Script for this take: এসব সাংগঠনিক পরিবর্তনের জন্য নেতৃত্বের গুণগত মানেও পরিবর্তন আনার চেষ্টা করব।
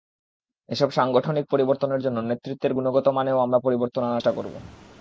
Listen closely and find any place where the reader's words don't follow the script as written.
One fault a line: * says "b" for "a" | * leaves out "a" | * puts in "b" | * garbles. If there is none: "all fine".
* puts in "আমরা"